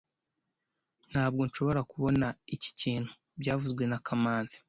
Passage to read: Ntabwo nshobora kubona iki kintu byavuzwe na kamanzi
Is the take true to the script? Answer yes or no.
yes